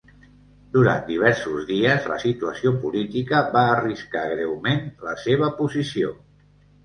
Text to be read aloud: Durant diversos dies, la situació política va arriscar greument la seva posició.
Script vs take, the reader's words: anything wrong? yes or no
no